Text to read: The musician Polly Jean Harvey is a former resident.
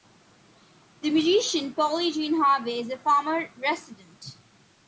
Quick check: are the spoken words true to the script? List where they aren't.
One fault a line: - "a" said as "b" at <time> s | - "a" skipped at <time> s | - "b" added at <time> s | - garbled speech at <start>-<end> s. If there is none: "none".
none